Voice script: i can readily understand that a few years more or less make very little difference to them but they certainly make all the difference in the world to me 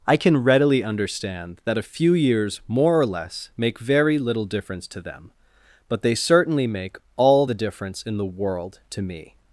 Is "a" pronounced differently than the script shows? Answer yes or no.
no